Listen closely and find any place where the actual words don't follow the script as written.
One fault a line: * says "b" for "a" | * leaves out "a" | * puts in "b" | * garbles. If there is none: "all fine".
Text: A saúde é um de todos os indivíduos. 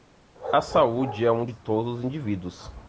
all fine